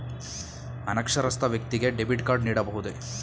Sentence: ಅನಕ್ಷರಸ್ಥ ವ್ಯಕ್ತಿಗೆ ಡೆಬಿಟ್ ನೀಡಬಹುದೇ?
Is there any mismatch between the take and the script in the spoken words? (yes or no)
yes